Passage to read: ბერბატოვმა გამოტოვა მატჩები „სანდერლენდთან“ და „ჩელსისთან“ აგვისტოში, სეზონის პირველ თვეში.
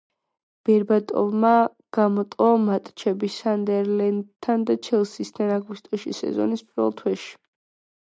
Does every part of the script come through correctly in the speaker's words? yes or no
yes